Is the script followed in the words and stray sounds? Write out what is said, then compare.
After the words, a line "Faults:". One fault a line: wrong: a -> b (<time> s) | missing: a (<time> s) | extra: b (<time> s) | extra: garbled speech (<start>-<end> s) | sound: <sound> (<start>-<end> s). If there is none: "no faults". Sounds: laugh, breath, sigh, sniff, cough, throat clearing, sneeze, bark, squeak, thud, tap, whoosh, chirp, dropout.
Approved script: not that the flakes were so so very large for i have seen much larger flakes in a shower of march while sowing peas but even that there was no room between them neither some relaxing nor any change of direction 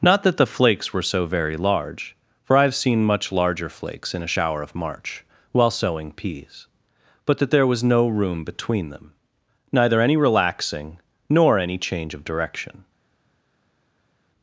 not that the flakes were so very large for i have seen much larger flakes in a shower of march while sowing peas but that there was no room between them neither any relaxing nor any change of direction
Faults:
missing: so (1.3 s)
missing: even (7.4 s)
wrong: some -> any (10.0 s)